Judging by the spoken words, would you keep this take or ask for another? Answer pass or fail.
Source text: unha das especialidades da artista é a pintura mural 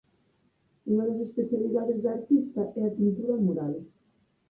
pass